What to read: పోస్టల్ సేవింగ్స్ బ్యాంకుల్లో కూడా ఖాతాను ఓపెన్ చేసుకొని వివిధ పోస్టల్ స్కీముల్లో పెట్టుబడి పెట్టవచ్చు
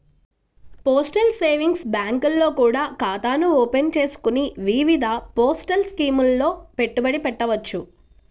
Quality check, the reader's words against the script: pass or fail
pass